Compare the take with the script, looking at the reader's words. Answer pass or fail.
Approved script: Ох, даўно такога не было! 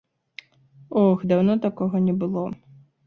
pass